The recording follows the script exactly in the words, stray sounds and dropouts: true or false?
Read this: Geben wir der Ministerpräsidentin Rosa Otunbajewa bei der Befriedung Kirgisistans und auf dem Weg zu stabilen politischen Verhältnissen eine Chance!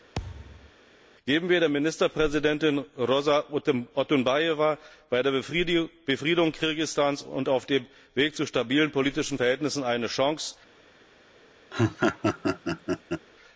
false